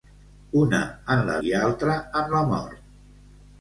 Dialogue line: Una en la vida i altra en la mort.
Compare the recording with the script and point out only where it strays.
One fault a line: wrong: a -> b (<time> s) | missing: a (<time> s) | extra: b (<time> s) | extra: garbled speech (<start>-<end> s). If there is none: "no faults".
missing: vida (1.4 s)